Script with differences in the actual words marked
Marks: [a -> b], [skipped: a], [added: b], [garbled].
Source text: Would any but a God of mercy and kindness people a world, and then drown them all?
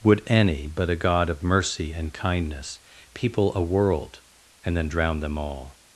Would any but a God of mercy and kindness people a world, and then drown them all?